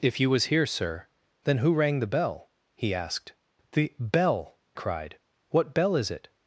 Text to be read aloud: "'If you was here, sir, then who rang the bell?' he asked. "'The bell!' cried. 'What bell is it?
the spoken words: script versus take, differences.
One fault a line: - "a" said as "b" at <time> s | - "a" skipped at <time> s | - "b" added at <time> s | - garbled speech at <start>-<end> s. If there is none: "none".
none